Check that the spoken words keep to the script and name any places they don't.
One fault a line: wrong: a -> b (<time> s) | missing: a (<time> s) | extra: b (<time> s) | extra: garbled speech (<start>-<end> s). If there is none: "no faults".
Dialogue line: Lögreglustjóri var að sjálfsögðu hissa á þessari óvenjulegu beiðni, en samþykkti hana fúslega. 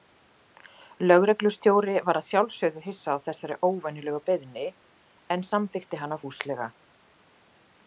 no faults